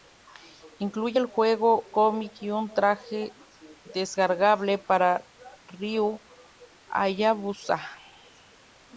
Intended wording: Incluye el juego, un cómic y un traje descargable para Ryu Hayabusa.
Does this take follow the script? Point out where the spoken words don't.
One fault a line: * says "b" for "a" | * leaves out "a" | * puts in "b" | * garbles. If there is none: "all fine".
* leaves out "un"